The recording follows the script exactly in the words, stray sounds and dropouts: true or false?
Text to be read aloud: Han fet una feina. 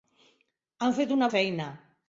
true